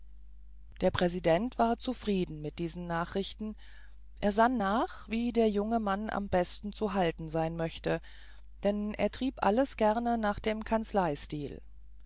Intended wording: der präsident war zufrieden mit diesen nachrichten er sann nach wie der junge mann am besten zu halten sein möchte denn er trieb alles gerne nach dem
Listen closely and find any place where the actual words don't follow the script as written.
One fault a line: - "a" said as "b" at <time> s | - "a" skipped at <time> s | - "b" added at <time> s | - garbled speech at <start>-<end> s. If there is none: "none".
none